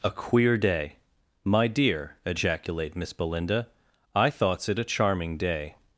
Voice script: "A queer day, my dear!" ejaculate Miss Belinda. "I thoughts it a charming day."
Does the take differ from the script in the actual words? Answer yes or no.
no